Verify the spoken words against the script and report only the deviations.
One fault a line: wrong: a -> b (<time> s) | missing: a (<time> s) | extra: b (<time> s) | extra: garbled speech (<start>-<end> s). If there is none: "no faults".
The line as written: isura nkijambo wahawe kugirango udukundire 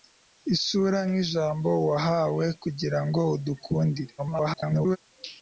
extra: garbled speech (4.2-5.0 s)